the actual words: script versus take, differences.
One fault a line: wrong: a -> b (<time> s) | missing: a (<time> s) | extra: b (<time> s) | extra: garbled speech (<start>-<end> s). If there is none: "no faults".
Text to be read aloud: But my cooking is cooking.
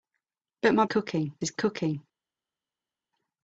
no faults